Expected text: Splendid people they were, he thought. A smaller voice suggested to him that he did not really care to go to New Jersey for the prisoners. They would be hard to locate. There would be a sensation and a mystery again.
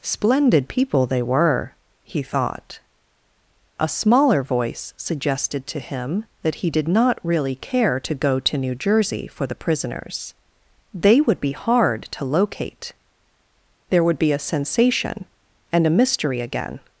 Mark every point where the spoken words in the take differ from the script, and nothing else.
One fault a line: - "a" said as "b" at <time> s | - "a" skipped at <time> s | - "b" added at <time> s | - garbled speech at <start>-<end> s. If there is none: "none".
none